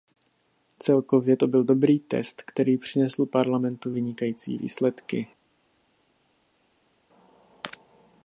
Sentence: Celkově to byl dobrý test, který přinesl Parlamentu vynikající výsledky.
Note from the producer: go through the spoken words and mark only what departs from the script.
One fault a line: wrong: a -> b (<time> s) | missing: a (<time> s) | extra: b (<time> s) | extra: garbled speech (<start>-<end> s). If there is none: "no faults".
no faults